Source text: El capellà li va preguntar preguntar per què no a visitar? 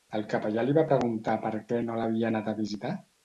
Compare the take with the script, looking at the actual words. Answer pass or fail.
fail